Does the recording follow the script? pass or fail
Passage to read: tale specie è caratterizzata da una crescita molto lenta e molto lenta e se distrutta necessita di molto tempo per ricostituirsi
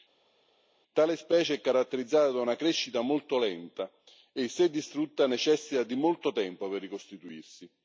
fail